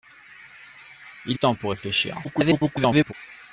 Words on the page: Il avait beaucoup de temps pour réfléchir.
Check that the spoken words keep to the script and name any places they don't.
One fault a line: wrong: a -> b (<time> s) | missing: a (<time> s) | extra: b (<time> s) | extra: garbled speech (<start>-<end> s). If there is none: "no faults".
missing: avait beaucoup (1.4 s)
extra: garbled speech (2.2-3.1 s)